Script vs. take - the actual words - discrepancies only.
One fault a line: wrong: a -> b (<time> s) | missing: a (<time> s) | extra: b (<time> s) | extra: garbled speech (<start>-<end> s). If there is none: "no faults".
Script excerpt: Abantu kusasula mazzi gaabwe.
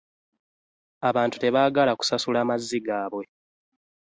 extra: tebaagala (1.4 s)